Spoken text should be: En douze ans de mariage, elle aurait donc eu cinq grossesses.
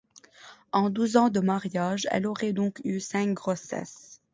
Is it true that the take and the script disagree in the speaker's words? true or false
false